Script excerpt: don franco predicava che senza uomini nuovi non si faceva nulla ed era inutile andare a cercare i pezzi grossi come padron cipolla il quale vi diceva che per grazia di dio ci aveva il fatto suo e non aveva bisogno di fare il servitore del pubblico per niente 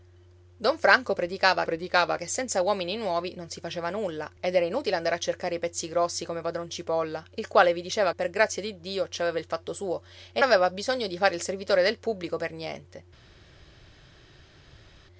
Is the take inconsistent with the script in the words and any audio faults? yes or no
yes